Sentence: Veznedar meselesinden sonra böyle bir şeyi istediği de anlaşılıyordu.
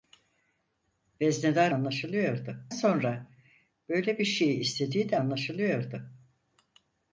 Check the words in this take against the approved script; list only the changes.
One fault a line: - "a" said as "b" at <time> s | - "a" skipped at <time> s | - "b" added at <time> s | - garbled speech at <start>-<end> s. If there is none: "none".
- "meselesinden" said as "anlaşılıyordu" at 1.7 s